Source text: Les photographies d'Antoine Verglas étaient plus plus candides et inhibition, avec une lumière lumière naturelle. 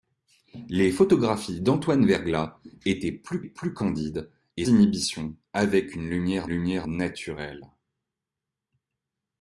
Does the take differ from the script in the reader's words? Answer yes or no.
no